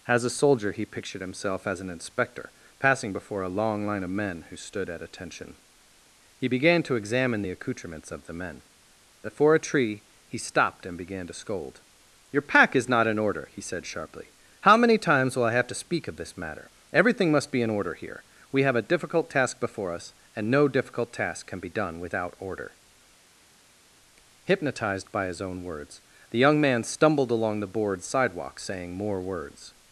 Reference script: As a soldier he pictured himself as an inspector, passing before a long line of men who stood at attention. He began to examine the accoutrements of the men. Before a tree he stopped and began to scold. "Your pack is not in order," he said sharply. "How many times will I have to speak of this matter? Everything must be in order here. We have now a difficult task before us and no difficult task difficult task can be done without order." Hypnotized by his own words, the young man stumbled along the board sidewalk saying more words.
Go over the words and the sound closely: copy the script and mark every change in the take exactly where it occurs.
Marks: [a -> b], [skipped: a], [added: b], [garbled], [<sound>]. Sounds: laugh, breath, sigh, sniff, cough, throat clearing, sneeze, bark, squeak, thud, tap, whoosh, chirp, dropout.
As a soldier he pictured himself as an inspector, passing before a long line of men who stood at attention. He began to examine the accoutrements of the men. Before a tree he stopped and began to scold. "Your pack is not in order," he said sharply. "How many times will I have to speak of this matter? Everything must be in order here. We have [skipped: now] a difficult task before us and no difficult task [skipped: difficult task] can be done without order." Hypnotized by his own words, the young man stumbled along the board sidewalk saying more words.